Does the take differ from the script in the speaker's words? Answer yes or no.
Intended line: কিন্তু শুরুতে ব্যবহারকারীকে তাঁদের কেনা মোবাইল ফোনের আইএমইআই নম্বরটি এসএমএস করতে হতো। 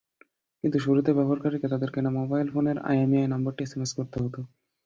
no